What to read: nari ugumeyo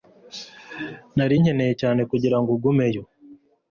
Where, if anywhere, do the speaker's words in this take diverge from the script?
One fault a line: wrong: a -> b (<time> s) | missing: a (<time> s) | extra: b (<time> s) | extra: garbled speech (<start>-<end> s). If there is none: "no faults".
extra: nkeneye cyane kugirango (1.4 s)